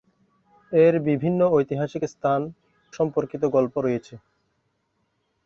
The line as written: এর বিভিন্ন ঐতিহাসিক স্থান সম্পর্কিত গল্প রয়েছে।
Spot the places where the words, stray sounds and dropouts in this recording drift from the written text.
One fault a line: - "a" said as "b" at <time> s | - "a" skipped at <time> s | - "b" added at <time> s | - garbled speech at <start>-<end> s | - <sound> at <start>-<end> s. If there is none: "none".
none